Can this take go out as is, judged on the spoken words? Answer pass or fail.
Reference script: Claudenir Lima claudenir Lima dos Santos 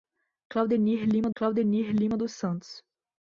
pass